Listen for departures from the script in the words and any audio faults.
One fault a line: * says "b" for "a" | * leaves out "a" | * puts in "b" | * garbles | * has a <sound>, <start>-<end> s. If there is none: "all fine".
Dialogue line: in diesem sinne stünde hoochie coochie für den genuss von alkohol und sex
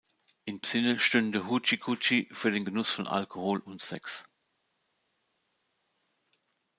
* leaves out "diesem"